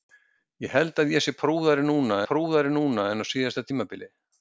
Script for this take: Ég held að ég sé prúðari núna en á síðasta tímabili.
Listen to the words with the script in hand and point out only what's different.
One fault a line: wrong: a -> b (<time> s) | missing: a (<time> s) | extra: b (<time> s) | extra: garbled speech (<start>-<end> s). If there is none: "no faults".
extra: prúðari núna (2.3 s)